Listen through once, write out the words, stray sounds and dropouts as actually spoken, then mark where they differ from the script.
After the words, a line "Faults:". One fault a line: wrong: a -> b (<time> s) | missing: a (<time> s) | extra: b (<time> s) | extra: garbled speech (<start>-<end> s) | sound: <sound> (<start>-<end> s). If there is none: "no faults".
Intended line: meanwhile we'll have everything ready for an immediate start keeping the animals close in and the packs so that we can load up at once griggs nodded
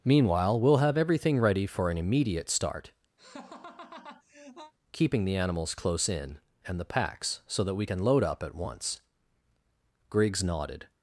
meanwhile we'll have everything ready for an immediate start keeping the animals close in and the packs so that we can load up at once griggs nodded
Faults:
sound: laugh (3.2-4.7 s)